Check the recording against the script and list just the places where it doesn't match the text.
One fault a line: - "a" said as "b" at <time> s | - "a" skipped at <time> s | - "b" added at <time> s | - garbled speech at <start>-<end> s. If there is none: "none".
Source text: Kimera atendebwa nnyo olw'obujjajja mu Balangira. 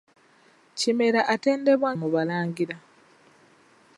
- "nnyo olw'obujjajja" skipped at 1.9 s